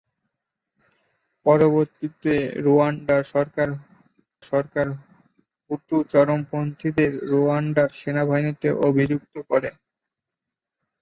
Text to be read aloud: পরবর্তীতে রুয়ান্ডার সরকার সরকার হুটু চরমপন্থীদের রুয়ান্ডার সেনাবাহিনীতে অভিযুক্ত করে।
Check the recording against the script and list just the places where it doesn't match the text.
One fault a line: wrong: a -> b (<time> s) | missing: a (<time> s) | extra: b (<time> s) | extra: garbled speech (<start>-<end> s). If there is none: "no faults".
no faults